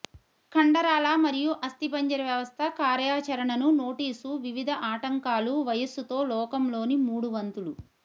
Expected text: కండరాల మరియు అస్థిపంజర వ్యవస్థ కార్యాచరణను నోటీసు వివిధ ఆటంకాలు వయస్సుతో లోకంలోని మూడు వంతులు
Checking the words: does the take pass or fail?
pass